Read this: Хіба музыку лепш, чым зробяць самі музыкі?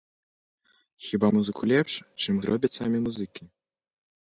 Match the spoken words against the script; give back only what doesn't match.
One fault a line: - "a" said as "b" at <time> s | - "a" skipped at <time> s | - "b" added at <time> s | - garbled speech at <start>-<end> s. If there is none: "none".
none